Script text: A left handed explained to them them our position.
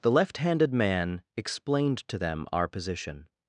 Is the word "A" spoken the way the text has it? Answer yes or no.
no